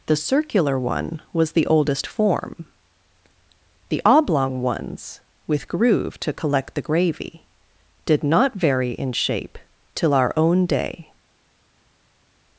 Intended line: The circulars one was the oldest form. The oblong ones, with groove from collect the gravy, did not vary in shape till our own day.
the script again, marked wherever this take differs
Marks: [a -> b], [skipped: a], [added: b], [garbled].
The [circulars -> circular] one was the oldest form. The oblong ones, with groove [from -> to] collect the gravy, did not vary in shape till our own day.